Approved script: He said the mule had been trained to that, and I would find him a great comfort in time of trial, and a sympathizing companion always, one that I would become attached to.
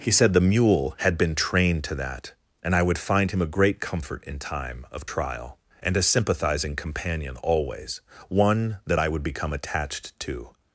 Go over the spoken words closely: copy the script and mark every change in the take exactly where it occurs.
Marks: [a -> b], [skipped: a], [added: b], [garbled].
He said the mule had been trained to that, and I would find him a great comfort in time of trial, and a sympathizing companion always, one that I would become attached to.